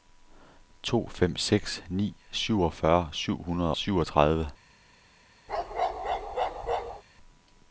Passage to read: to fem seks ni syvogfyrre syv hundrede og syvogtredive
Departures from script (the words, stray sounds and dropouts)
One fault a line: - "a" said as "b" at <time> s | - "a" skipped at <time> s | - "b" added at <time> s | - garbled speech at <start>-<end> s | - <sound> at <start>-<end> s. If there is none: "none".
- "og" skipped at 3.7 s
- bark at 5.5-7.0 s